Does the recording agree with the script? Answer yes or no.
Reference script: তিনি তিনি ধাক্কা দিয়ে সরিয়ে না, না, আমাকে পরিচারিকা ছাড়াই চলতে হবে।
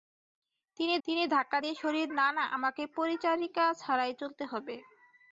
yes